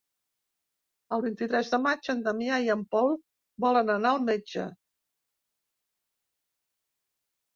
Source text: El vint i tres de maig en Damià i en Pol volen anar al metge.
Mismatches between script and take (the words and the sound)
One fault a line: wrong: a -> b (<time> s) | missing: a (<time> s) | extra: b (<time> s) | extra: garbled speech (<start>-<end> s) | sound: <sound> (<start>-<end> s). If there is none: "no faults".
no faults